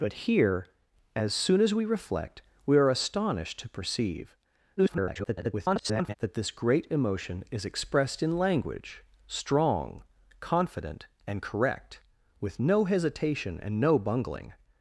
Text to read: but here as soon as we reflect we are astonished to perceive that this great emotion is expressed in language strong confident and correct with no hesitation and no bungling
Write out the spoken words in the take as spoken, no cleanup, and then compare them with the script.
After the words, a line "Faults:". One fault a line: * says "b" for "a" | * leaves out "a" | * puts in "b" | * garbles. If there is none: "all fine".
but here as soon as we reflect we are astonished to perceive [garbled] that this great emotion is expressed in language strong confident and correct with no hesitation and no bungling
Faults:
* garbles